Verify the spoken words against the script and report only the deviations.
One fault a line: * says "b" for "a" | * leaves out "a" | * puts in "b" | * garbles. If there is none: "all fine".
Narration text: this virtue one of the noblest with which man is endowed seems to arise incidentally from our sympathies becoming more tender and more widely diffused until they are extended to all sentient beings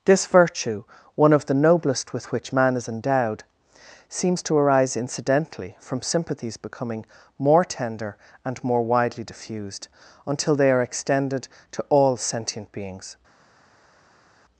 * leaves out "our"